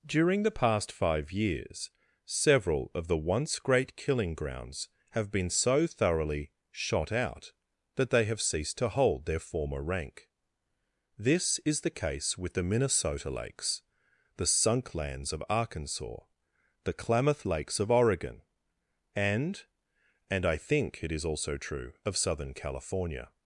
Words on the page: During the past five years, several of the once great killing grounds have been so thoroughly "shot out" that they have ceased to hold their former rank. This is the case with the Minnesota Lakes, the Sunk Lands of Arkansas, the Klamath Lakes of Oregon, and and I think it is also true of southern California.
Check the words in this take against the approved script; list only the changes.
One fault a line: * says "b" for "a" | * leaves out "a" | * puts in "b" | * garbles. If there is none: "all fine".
all fine